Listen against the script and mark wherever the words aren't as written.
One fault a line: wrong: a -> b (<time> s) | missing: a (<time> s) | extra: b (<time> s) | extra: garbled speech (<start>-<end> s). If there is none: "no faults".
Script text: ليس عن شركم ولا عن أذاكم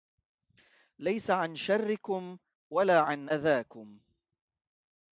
no faults